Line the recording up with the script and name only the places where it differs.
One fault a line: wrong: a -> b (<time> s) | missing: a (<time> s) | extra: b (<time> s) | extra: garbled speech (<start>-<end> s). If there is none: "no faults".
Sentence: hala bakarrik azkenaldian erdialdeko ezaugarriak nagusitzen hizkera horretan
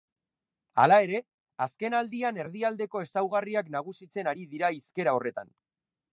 wrong: bakarrik -> ere (1.1 s)
extra: ari dira (4.3 s)